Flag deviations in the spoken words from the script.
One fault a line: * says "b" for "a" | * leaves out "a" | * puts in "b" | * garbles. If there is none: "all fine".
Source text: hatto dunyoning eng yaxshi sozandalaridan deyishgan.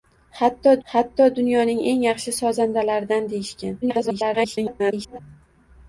* puts in "hatto"
* garbles